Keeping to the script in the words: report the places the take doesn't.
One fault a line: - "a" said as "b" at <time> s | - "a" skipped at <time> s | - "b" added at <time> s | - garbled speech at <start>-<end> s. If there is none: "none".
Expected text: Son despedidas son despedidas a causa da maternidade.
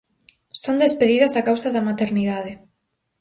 - "son despedidas" skipped at 1.3 s